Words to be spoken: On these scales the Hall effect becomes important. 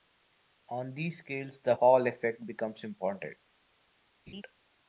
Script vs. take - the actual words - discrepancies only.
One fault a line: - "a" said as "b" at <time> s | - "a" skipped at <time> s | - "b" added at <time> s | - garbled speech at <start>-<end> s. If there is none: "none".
none